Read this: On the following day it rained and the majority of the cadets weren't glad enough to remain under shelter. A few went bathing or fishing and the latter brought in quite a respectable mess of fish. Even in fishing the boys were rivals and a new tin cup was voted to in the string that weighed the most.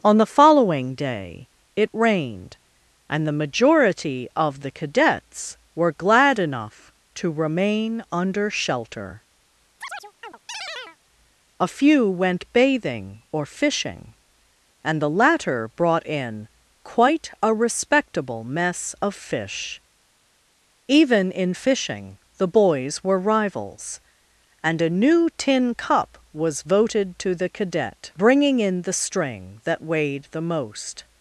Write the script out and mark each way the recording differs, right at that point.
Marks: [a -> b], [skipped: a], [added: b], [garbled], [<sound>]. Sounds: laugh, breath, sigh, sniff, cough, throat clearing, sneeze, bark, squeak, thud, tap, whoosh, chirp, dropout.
On the following day it rained and the majority of the cadets [weren't -> were] glad enough to remain under shelter. [chirp] A few went bathing or fishing and the latter brought in quite a respectable mess of fish. Even in fishing the boys were rivals and a new tin cup was voted to [added: the cadet bringing] in the string that weighed the most.